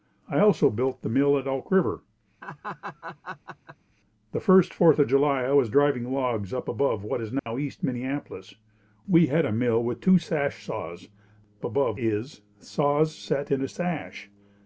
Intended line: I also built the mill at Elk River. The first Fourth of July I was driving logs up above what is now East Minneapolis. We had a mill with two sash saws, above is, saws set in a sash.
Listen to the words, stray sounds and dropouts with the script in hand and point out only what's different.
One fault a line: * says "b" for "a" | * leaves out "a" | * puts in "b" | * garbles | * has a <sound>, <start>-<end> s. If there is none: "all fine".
* has a laugh, 2.4-3.8 s
* has a dropout, 7.4-7.5 s